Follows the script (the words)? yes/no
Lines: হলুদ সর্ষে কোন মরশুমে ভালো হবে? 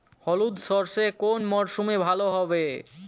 yes